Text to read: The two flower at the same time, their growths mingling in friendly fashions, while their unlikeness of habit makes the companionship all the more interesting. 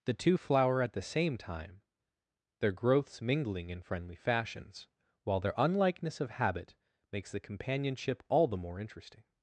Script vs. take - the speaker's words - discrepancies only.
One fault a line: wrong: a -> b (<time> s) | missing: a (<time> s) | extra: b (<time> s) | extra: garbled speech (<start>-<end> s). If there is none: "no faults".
no faults